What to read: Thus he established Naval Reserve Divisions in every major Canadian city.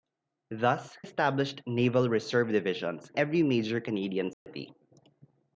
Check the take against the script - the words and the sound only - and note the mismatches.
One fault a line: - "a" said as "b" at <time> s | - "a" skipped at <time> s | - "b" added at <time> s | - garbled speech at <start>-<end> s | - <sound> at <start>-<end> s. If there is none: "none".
- "he" skipped at 1.0 s
- "in" skipped at 3.1 s
- dropout at 4.3-4.5 s